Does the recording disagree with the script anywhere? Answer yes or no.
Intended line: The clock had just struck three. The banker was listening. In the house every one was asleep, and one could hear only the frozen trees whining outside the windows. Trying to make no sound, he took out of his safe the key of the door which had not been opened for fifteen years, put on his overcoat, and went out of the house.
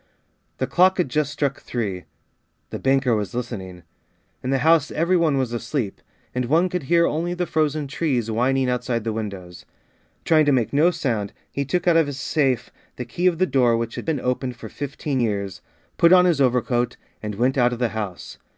yes